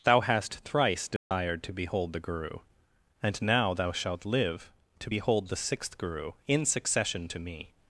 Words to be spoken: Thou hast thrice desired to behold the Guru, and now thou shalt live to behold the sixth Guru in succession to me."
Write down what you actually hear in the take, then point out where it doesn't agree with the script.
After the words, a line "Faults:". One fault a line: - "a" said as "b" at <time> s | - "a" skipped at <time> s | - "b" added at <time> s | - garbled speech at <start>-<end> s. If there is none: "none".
Thou hast thrice desired to behold the Guru, and now thou shalt live to behold the sixth Guru in succession to me."
Faults:
none